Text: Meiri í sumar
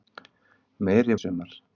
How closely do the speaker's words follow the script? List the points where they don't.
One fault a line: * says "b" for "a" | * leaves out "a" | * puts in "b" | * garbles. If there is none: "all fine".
all fine